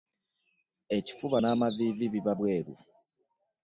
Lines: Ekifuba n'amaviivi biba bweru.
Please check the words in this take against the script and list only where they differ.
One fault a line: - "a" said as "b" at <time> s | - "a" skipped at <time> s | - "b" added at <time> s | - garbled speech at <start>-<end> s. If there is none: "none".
none